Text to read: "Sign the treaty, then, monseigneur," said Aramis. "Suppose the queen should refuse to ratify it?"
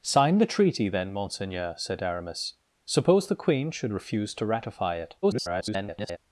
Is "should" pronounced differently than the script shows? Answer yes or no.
no